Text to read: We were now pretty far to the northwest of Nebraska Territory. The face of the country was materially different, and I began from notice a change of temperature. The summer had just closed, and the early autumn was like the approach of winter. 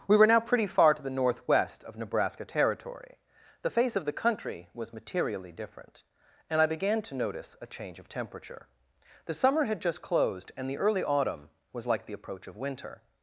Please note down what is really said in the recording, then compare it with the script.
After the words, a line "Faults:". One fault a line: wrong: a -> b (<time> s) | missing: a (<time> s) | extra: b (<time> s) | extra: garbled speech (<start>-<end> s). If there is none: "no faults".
We were now pretty far to the northwest of Nebraska Territory. The face of the country was materially different, and I began to notice a change of temperature. The summer had just closed, and the early autumn was like the approach of winter.
Faults:
wrong: from -> to (7.0 s)